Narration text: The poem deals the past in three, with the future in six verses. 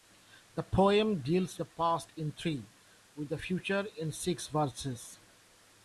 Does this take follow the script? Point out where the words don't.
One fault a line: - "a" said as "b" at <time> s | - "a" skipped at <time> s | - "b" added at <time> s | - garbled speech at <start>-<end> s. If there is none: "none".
none